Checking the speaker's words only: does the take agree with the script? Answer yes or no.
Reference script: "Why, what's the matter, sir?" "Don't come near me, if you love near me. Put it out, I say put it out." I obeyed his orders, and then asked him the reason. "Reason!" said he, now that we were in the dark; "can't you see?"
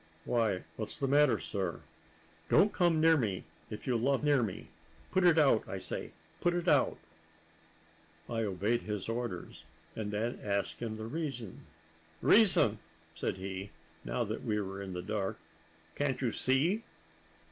yes